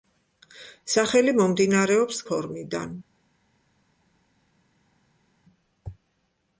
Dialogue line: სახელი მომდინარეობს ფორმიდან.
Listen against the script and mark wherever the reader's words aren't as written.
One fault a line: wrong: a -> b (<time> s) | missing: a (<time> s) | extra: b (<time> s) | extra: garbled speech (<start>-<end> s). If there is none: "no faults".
no faults